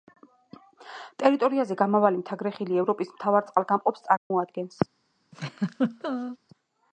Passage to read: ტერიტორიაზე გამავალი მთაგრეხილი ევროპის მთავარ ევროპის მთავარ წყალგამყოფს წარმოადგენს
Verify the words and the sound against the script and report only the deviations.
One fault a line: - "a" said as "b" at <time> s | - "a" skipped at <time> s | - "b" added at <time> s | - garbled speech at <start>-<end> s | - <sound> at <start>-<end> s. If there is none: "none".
- "ევროპის მთავარ" skipped at 3.5 s
- dropout at 4.2-4.3 s
- laugh at 5.3-6.4 s